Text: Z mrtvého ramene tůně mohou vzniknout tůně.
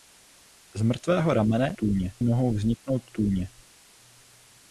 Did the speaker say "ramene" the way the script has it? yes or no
yes